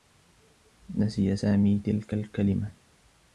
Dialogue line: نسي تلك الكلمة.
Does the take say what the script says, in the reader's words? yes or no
no